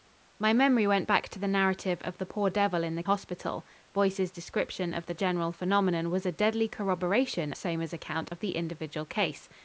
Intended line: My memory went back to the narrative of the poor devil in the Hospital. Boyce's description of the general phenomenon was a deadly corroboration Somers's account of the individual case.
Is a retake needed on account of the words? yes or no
no